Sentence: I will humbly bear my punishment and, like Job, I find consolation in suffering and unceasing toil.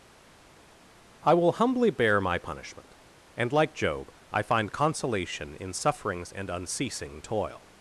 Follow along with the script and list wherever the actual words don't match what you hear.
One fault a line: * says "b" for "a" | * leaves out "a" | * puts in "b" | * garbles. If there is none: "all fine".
* says "sufferings" for "suffering"